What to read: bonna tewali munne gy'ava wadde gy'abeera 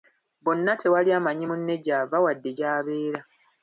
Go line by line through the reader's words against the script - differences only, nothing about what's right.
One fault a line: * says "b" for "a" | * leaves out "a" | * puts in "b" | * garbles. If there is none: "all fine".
* puts in "amanyi"